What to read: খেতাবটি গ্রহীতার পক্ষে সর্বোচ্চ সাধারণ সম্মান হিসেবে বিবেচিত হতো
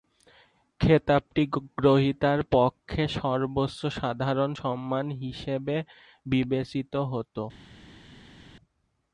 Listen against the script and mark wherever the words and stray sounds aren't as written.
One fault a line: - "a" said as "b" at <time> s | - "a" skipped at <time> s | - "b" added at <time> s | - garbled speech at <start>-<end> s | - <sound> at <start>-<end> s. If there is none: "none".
none